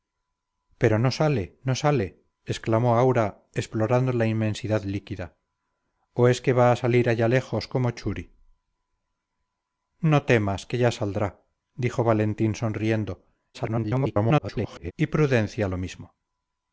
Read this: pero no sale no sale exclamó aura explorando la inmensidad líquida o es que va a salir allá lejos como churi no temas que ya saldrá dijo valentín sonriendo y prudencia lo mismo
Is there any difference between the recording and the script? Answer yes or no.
yes